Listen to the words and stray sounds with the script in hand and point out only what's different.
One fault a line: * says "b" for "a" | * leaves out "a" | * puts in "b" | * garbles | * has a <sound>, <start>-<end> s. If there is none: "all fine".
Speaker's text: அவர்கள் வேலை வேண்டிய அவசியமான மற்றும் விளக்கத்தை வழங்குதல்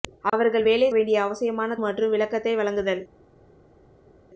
all fine